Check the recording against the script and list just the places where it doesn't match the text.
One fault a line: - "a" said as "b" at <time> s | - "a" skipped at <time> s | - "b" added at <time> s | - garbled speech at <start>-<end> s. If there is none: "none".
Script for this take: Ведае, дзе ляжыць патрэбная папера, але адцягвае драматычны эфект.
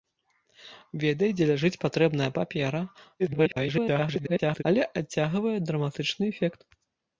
- garbled speech at 3.2-4.6 s